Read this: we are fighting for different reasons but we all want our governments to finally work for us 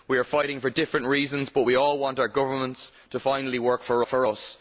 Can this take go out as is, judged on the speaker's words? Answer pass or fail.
fail